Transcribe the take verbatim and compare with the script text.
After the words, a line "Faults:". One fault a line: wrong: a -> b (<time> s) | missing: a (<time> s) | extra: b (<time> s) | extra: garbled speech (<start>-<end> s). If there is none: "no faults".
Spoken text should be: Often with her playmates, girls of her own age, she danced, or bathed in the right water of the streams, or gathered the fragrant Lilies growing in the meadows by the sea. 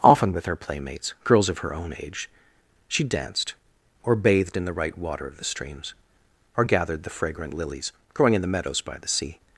Often with her playmates, girls of her own age, she danced, or bathed in the right water of the streams, or gathered the fragrant Lilies growing in the meadows by the sea.
Faults:
no faults